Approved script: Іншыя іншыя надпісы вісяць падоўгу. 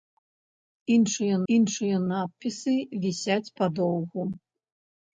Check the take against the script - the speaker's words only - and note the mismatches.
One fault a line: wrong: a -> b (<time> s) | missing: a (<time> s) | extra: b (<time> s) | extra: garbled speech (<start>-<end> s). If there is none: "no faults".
no faults